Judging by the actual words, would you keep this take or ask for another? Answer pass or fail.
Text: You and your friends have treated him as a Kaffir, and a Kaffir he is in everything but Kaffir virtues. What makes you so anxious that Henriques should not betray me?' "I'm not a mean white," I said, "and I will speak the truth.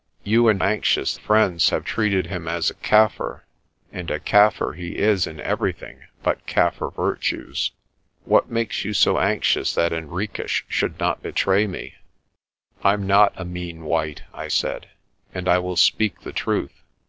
fail